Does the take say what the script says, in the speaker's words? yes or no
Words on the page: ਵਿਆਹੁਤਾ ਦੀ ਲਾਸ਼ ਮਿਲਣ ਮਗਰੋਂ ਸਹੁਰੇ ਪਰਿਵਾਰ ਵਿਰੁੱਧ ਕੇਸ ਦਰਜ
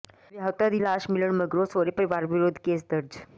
yes